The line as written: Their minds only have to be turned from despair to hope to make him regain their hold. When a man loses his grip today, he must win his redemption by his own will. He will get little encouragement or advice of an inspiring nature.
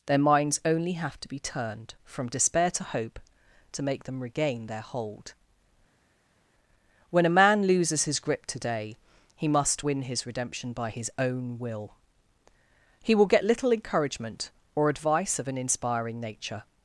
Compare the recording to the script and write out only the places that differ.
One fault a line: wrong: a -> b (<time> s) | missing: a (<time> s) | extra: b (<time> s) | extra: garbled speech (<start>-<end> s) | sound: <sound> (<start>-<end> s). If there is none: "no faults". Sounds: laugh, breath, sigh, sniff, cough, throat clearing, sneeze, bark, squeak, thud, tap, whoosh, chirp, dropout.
wrong: him -> them (4.0 s)